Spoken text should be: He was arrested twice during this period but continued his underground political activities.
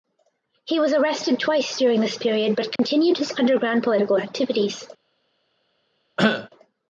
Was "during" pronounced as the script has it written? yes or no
yes